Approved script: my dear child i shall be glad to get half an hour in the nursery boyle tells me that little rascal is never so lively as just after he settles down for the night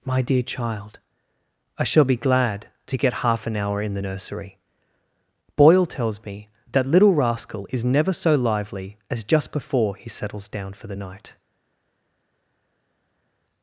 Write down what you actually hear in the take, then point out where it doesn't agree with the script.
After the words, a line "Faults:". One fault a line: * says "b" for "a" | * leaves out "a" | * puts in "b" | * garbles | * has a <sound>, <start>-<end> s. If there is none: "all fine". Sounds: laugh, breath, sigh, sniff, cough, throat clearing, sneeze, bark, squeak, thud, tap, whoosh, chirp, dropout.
my dear child i shall be glad to get half an hour in the nursery boyle tells me that little rascal is never so lively as just before he settles down for the night
Faults:
* says "before" for "after"